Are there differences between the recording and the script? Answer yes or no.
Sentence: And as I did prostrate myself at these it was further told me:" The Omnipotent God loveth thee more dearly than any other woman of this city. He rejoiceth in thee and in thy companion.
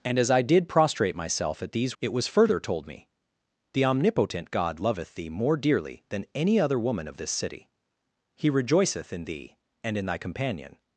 no